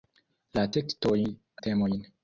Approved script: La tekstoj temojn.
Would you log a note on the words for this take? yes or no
no